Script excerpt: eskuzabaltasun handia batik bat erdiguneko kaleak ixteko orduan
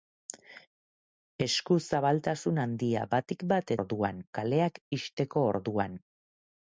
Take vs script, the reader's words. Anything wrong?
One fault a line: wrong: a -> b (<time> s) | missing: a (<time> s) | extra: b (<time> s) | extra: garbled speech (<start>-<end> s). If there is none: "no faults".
wrong: erdiguneko -> orduan (3.8 s)